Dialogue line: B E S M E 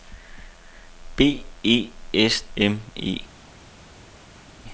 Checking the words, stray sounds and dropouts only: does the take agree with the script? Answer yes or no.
yes